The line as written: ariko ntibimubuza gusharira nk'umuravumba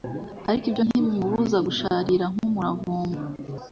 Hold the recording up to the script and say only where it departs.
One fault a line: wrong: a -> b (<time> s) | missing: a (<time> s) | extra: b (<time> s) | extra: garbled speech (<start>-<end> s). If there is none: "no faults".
extra: ibyo (0.7 s)